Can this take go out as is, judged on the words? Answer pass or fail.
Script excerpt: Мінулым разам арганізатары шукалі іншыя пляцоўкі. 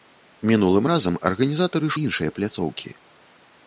fail